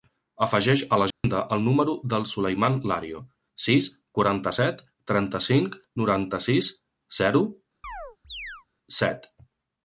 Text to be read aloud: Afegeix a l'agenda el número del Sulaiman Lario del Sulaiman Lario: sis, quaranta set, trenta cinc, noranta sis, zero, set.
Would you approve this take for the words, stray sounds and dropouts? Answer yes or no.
no